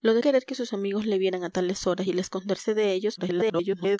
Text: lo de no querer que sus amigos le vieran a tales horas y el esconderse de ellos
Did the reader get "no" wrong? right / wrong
wrong